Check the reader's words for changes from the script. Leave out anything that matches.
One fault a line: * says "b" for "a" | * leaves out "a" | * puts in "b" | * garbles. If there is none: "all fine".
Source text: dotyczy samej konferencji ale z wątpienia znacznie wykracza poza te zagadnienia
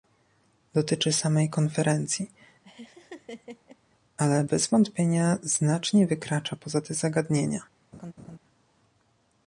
* says "bez" for "z"